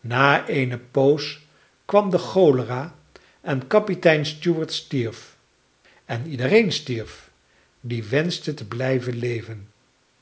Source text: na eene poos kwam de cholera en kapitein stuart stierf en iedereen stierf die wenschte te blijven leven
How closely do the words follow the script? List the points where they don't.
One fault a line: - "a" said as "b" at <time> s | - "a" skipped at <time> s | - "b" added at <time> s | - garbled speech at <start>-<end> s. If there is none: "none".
none